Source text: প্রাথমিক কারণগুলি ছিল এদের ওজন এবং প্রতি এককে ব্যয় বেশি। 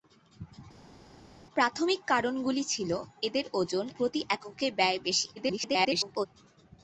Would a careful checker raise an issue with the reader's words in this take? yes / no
yes